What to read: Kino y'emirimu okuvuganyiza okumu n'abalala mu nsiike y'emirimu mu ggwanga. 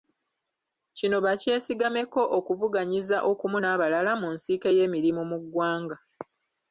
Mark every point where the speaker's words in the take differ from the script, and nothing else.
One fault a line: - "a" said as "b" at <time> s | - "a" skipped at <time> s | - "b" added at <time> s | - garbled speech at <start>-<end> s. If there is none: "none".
- "y'emirimu" said as "bakyesigameko" at 1.2 s